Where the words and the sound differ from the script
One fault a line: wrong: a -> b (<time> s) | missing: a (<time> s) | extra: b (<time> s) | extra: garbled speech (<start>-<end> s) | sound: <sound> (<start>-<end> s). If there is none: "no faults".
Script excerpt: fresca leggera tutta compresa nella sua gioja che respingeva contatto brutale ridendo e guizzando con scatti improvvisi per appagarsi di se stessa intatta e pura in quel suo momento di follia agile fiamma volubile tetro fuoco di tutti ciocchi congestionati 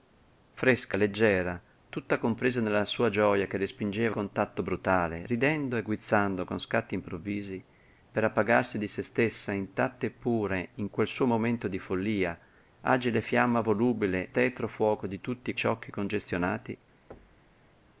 sound: thud (17.1-17.5 s)